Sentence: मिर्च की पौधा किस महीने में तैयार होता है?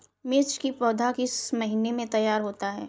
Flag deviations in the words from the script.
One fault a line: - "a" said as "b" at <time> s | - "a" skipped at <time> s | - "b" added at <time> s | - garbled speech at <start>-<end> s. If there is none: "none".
none